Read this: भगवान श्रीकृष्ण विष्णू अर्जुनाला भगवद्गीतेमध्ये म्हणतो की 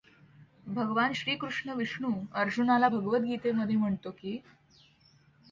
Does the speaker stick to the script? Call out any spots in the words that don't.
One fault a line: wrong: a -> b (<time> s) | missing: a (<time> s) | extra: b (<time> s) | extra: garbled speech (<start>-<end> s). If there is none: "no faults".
no faults